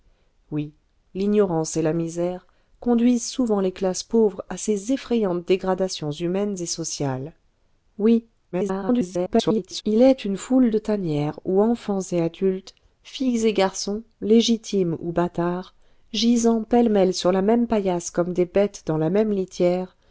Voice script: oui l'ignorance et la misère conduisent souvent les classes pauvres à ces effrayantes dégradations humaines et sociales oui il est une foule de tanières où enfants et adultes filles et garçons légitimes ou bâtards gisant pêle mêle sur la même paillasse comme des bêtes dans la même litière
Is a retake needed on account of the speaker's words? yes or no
yes